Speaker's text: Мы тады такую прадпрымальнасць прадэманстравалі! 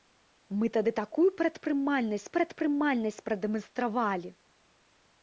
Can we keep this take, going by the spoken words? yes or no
no